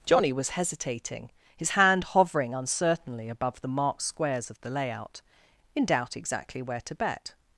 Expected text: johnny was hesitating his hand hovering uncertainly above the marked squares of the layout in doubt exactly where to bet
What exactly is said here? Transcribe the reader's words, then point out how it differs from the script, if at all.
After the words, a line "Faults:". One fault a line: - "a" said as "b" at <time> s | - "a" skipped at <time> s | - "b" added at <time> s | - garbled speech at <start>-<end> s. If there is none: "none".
johnny was hesitating his hand hovering uncertainly above the marked squares of the layout in doubt exactly where to bet
Faults:
none